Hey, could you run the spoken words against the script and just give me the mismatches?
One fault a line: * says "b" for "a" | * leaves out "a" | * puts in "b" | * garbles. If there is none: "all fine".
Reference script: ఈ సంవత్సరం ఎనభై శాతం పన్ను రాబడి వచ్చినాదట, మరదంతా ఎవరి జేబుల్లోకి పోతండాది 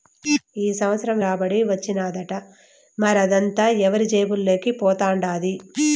* leaves out "ఎనభై శాతం పన్ను"